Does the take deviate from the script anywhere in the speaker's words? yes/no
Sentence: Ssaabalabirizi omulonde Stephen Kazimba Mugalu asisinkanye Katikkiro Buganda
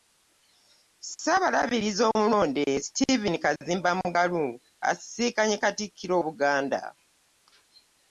no